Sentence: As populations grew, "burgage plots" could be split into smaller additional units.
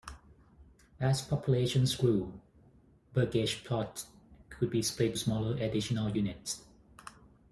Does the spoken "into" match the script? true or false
false